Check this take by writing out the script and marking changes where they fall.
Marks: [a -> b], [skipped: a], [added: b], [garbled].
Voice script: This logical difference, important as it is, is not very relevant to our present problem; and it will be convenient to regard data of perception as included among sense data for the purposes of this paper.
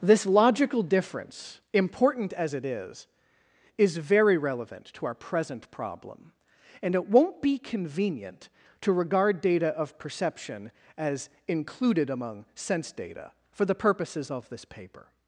This logical difference, important as it is, is [skipped: not] very relevant to our present problem; and it [will -> won't] be convenient to regard data of perception as included among sense data for the purposes of this paper.